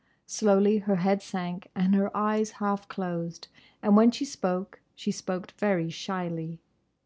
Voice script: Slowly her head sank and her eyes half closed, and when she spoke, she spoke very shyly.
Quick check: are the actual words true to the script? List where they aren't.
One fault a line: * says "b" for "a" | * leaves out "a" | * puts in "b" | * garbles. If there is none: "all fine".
all fine